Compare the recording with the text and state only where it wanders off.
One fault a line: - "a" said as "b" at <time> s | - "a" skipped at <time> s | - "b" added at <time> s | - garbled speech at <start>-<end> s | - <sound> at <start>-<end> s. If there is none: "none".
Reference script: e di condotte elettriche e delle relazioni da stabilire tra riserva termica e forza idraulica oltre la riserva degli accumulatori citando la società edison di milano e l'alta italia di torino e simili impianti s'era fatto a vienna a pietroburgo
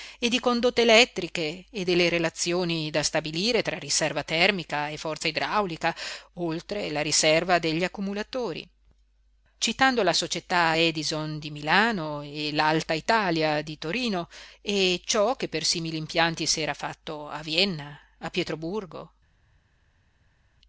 - "ciò che per" added at 15.0 s